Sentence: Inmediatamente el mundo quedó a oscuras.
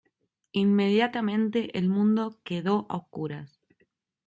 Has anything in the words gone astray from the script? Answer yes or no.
no